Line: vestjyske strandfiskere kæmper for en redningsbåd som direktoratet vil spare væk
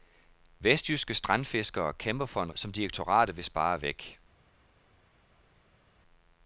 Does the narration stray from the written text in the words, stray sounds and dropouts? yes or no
yes